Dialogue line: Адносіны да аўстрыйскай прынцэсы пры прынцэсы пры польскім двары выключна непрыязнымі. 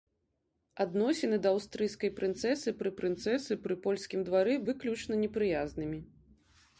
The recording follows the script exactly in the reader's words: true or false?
true